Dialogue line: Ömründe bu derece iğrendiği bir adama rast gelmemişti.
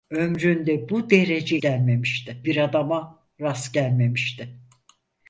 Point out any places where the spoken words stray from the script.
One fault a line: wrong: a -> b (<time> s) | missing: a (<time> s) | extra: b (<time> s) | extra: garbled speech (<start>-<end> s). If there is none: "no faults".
wrong: iğrendiği -> gelmemişti (1.6 s)